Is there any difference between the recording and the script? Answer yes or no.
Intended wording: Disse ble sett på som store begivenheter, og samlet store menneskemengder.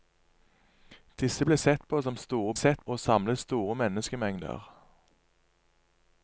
yes